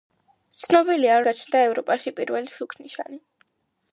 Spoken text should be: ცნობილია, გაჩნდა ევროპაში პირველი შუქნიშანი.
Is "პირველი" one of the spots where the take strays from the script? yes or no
no